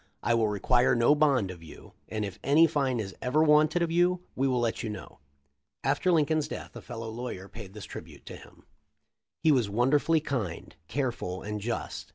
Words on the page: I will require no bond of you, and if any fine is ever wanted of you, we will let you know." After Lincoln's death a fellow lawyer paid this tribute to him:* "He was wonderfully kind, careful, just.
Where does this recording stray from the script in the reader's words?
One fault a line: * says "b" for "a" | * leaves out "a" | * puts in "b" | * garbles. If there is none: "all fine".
* puts in "and"